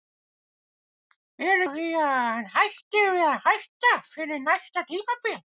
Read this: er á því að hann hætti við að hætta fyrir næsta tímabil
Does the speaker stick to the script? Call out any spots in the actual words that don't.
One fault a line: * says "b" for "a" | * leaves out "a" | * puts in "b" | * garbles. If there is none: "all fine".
all fine